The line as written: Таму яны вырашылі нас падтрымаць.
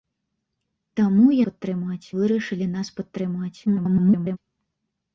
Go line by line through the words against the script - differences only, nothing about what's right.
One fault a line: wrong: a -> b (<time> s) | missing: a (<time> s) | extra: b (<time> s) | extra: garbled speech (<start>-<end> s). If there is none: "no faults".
wrong: яны -> падтрымаць (1.5 s)
extra: garbled speech (3.7-4.4 s)